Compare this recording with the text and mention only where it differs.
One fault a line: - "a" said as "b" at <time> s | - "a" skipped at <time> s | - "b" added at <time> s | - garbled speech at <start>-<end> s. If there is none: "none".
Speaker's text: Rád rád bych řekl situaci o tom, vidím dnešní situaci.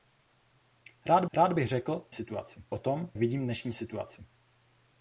none